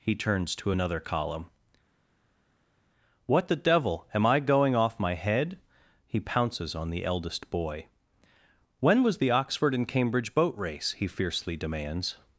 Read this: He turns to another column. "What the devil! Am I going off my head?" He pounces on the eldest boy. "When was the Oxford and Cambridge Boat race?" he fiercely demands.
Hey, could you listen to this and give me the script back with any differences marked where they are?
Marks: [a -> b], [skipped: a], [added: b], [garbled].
He turns to another column. "What the devil! Am I going off my head?" He pounces on the eldest boy. "When was the Oxford and Cambridge Boat race?" he fiercely demands.